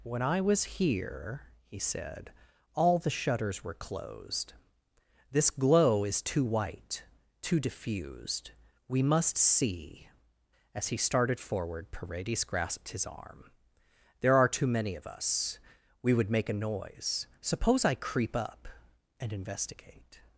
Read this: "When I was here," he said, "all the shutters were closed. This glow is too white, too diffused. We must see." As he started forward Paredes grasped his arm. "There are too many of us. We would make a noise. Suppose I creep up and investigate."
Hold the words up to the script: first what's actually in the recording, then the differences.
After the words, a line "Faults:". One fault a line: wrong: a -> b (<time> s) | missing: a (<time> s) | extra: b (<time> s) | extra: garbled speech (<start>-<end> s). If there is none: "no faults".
"When I was here," he said, "all the shutters were closed. This glow is too white, too diffused. We must see." As he started forward Paredes grasped his arm. "There are too many of us. We would make a noise. Suppose I creep up and investigate."
Faults:
no faults